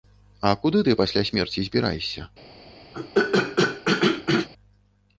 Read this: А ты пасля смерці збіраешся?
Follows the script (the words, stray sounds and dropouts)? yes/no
no